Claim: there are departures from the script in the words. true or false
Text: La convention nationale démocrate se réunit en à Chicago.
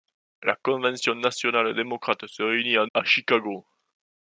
false